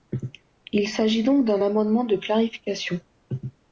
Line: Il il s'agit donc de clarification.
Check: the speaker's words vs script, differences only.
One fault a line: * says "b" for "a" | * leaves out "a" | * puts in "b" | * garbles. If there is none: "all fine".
* leaves out "il"
* puts in "d'un amendement"